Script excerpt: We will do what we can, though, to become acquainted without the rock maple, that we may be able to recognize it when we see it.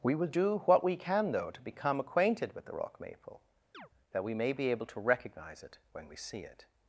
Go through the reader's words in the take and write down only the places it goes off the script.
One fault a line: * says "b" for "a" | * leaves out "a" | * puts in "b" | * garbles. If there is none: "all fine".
* says "with" for "without"